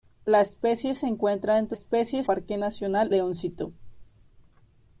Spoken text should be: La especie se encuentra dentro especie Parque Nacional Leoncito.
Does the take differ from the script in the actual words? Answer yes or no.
no